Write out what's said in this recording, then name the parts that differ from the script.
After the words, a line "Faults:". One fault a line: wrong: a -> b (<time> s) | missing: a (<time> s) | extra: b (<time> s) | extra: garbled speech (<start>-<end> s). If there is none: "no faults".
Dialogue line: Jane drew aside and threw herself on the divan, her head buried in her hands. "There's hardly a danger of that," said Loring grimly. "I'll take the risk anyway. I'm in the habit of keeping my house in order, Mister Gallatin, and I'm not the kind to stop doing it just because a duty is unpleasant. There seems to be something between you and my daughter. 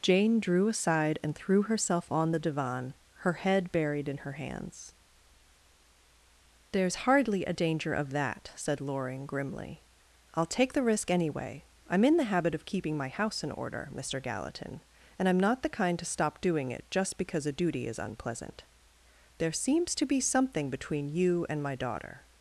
Jane drew aside and threw herself on the divan, her head buried in her hands. "There's hardly a danger of that," said Loring grimly. "I'll take the risk anyway. I'm in the habit of keeping my house in order, Mister Gallatin, and I'm not the kind to stop doing it just because a duty is unpleasant. There seems to be something between you and my daughter.
Faults:
no faults